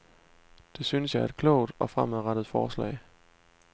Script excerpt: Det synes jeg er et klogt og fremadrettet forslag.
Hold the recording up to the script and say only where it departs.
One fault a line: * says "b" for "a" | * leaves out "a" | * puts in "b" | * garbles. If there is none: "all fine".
all fine